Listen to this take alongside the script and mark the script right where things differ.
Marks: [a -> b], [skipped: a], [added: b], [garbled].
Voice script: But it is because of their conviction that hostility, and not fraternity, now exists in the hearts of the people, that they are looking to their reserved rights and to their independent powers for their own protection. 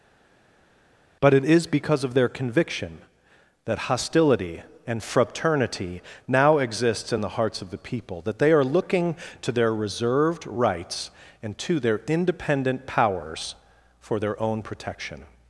But it is because of their conviction that hostility, and [skipped: not] fraternity, now exists in the hearts of the people, that they are looking to their reserved rights and to their independent powers for their own protection.